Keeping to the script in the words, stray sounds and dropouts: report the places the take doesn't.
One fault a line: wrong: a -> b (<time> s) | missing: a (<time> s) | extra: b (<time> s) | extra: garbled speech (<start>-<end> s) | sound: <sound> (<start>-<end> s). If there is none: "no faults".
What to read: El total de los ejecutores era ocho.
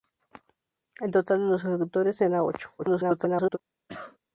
extra: garbled speech (2.8-3.6 s)
sound: cough (3.9-4.2 s)